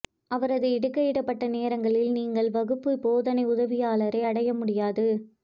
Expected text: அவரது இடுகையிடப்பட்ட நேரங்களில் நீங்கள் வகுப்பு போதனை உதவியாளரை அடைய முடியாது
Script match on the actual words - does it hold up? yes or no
yes